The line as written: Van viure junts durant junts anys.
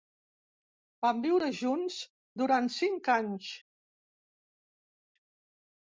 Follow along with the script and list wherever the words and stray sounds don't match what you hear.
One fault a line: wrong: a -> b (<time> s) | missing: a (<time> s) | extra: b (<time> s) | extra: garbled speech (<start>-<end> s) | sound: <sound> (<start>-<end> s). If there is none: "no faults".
wrong: junts -> cinc (2.8 s)